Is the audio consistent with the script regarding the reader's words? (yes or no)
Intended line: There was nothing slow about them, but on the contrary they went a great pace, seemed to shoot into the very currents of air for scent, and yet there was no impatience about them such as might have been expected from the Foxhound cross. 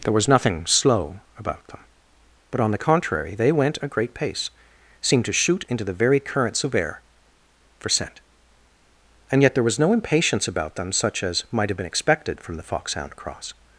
yes